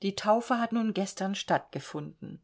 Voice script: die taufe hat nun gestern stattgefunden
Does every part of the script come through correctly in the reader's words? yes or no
yes